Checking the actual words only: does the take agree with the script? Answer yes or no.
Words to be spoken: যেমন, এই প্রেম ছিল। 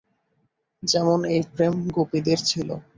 no